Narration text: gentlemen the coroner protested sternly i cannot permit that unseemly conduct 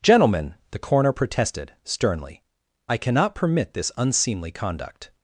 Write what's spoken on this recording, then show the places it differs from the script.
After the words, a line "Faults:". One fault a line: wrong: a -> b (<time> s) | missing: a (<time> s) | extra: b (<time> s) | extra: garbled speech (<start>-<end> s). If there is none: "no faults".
gentlemen the coroner protested sternly i cannot permit this unseemly conduct
Faults:
wrong: that -> this (3.7 s)